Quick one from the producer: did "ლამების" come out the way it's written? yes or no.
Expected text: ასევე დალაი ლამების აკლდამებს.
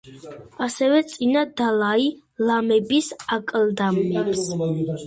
yes